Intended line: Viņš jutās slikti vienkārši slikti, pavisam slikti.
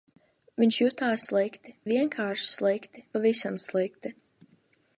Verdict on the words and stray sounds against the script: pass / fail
pass